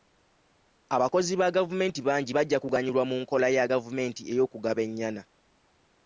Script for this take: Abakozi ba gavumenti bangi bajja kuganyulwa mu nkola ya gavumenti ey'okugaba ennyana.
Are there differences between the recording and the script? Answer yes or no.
no